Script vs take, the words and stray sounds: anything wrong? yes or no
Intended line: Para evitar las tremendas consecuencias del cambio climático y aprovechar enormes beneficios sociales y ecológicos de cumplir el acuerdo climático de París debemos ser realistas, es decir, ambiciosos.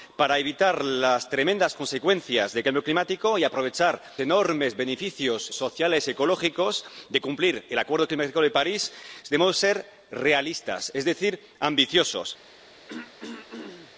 yes